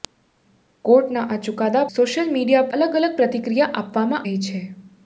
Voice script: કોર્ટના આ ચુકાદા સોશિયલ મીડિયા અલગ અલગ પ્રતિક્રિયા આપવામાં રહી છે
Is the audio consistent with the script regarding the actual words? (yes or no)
yes